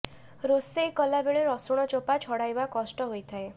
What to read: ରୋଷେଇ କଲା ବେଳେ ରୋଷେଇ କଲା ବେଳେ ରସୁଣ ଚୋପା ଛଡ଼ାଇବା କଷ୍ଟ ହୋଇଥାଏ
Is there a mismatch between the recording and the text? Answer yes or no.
yes